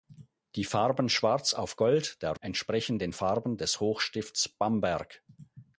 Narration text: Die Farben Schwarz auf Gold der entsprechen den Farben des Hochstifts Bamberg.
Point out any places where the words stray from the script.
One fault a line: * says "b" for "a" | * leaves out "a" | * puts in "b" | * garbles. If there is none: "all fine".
all fine